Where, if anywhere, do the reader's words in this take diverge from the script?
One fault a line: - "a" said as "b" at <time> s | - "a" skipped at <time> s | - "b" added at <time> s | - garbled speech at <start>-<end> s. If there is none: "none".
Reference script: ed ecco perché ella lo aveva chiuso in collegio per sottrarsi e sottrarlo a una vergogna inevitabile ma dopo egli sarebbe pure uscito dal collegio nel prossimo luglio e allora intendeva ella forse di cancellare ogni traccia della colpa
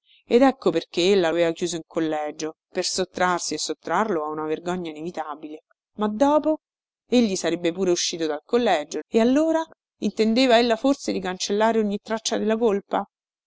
- "lo" skipped at 1.3 s
- "nel prossimo luglio" skipped at 9.0 s